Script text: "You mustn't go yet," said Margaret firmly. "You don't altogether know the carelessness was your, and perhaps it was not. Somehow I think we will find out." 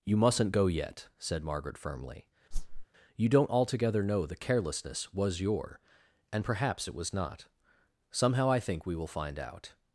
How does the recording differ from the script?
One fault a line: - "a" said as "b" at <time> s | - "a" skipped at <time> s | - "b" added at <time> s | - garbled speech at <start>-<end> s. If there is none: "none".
none